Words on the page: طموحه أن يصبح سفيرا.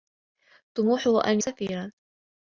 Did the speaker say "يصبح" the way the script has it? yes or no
no